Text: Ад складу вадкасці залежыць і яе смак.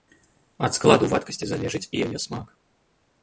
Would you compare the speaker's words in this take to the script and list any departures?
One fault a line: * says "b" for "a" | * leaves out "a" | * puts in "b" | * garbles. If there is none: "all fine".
all fine